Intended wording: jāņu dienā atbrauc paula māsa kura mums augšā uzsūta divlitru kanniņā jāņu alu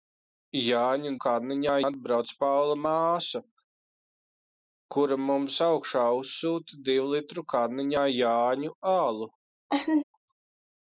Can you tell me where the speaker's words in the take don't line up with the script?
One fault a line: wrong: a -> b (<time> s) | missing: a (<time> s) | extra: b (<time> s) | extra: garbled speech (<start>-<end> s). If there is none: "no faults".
wrong: dienā -> kanniņā (1.3 s)